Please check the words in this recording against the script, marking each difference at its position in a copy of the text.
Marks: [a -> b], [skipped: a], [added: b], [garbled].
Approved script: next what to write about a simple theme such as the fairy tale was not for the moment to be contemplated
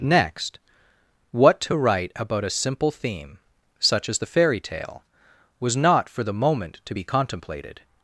next what to write about a simple theme such as the fairy tale was not for the moment to be contemplated